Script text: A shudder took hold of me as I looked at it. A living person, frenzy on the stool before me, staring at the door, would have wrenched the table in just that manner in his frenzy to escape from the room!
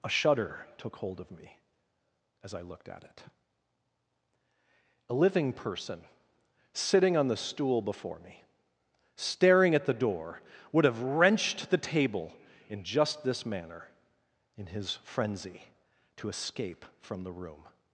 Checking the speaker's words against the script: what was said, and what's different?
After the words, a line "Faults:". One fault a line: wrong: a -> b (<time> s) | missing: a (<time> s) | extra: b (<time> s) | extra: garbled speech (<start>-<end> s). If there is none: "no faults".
A shudder took hold of me as I looked at it. A living person, sitting on the stool before me, staring at the door, would have wrenched the table in just this manner in his frenzy to escape from the room!
Faults:
wrong: frenzy -> sitting (6.7 s)
wrong: that -> this (13.2 s)